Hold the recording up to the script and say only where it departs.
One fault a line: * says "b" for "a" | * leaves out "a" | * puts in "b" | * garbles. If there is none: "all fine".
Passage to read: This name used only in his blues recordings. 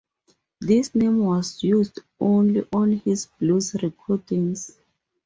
* puts in "was"
* says "on" for "in"